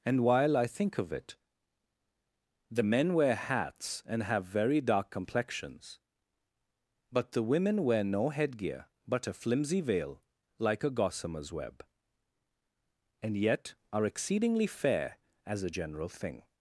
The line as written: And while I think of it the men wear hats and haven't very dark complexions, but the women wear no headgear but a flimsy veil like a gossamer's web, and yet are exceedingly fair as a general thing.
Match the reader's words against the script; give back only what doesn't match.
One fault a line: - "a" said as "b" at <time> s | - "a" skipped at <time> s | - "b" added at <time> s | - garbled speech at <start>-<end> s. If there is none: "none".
- "haven't" said as "have" at 4.2 s